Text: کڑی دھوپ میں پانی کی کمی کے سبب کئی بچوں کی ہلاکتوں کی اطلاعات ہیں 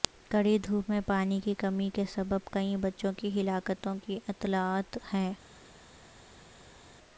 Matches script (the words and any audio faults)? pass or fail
pass